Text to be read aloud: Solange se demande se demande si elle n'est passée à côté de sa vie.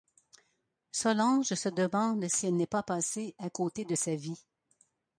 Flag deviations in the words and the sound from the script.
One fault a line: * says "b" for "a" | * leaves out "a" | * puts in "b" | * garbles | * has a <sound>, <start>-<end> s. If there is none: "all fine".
* leaves out "se demande"
* puts in "pas"